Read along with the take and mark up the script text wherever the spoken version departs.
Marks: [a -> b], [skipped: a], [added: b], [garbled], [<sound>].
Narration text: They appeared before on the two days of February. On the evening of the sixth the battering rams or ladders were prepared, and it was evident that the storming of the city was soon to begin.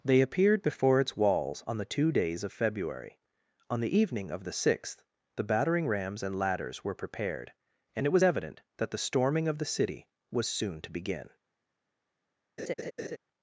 They appeared before [added: its walls] on the two days of February. On the evening of the sixth the battering rams [or -> and] ladders were prepared, and it was evident that the storming of the city was soon to begin. [laugh]